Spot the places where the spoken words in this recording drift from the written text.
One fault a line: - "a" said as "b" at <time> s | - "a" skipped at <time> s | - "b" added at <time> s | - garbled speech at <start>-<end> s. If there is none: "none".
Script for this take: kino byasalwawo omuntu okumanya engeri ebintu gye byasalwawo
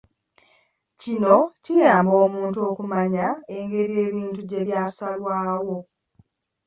- "byasalwawo" said as "kiyamba" at 1.6 s